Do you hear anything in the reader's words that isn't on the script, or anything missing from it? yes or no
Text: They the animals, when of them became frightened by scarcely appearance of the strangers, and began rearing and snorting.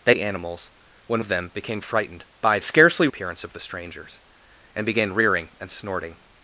no